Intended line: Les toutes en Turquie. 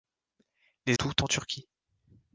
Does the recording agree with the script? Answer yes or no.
yes